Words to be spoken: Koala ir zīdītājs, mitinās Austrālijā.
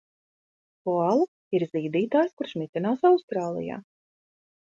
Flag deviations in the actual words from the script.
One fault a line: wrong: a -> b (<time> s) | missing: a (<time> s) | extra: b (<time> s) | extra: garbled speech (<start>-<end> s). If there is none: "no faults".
extra: kurš (2.4 s)